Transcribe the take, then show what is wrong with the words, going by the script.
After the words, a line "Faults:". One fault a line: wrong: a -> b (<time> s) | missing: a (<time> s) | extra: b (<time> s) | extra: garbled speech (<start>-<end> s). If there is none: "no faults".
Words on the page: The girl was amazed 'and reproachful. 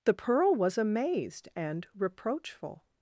The pearl was amazed 'and reproachful.
Faults:
wrong: girl -> pearl (0.1 s)